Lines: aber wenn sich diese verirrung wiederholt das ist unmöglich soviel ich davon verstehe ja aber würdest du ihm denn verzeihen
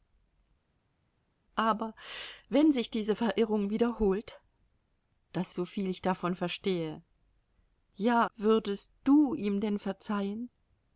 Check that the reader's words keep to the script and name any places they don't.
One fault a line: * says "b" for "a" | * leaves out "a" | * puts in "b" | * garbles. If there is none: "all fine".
* leaves out "ist unmöglich"
* leaves out "aber"